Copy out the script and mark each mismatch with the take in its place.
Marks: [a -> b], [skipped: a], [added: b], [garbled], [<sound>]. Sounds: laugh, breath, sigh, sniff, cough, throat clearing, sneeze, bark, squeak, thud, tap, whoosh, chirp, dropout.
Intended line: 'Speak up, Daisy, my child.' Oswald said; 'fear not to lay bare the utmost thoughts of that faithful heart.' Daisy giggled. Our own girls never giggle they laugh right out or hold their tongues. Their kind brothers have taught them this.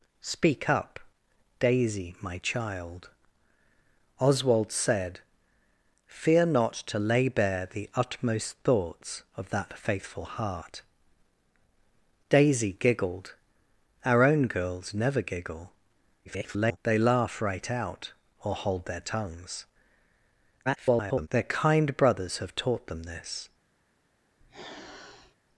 'Speak up, Daisy, my child.' Oswald said; 'fear not to lay bare the utmost thoughts of that faithful heart.' Daisy giggled. Our own girls never giggle [garbled] they laugh right out or hold their tongues. [garbled] Their kind brothers have taught them this. [sniff]